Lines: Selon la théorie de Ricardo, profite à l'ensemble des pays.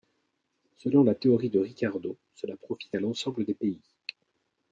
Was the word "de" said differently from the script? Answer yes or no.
no